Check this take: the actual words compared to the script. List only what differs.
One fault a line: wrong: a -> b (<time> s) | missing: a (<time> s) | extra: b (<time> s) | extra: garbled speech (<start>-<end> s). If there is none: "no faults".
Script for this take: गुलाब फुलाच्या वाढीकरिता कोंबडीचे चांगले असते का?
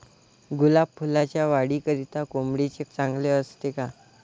no faults